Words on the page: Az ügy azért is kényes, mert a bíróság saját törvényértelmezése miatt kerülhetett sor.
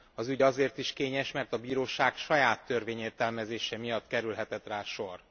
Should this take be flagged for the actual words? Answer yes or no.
yes